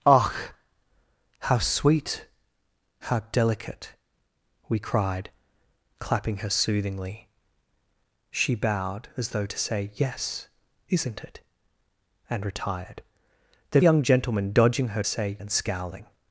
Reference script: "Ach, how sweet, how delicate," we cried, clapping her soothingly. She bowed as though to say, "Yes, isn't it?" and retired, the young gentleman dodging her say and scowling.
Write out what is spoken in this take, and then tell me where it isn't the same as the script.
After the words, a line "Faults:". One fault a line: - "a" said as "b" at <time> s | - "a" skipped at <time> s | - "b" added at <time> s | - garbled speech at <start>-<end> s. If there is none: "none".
"Ach, how sweet, how delicate," we cried, clapping her soothingly. She bowed as though to say, "Yes, isn't it?" and retired, the young gentleman dodging her say and scowling.
Faults:
none